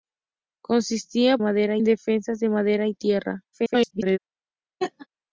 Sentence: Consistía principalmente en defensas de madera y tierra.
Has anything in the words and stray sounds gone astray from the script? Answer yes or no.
yes